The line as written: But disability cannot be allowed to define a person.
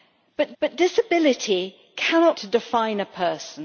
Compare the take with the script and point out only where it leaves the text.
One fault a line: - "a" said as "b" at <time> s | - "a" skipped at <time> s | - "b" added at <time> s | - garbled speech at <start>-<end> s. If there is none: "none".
- "but" added at 0.6 s
- "be allowed" skipped at 2.4 s